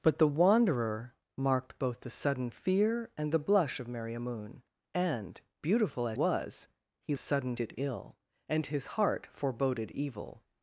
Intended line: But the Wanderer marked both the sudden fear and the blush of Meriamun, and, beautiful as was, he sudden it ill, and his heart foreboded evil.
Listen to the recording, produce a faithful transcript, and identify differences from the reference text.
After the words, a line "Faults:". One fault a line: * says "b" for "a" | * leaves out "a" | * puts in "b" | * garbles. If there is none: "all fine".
But the Wanderer marked both the sudden fear and the blush of Meriamun, and, beautiful as was, he sudden it ill, and his heart foreboded evil.
Faults:
all fine